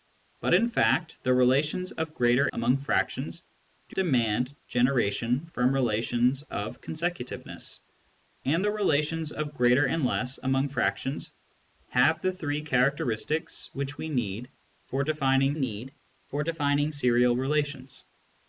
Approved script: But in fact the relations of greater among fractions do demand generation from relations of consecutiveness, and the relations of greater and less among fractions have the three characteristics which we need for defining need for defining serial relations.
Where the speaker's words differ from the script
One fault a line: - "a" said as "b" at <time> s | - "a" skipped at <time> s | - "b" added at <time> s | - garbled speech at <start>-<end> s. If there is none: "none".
none